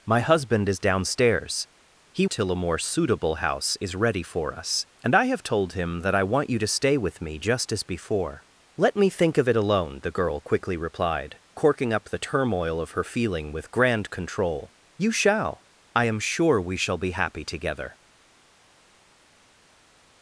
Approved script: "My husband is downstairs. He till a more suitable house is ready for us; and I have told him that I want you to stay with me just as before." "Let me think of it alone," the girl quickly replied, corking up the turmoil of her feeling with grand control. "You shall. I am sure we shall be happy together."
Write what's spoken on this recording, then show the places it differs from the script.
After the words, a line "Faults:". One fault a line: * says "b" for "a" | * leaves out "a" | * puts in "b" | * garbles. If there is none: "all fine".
"My husband is downstairs. He till a more suitable house is ready for us; and I have told him that I want you to stay with me just as before." "Let me think of it alone," the girl quickly replied, corking up the turmoil of her feeling with grand control. "You shall. I am sure we shall be happy together."
Faults:
all fine